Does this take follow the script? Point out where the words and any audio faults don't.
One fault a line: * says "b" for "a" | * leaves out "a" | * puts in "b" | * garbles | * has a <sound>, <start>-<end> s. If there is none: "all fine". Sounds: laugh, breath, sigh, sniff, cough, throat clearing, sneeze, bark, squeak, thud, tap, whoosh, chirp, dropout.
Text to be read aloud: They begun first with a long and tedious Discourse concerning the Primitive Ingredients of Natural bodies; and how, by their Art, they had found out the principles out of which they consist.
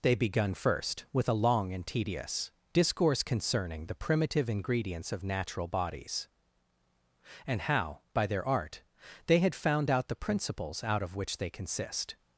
all fine